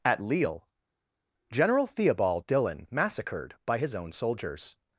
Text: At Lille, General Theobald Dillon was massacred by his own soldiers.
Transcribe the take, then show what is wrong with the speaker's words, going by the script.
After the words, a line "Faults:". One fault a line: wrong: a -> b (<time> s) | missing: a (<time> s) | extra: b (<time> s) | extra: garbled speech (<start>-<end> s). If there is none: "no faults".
At Lille, General Theobald Dillon massacred by his own soldiers.
Faults:
missing: was (2.9 s)